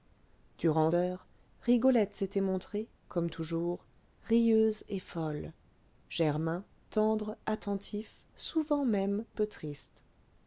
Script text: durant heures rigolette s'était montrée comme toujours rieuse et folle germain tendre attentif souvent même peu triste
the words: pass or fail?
pass